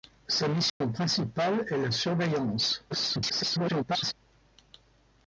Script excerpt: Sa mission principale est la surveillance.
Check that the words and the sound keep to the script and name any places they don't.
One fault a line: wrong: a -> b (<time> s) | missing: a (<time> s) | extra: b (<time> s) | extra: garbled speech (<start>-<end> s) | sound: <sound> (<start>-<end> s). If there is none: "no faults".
sound: dropout (0.7-0.8 s)
extra: garbled speech (2.9-4.1 s)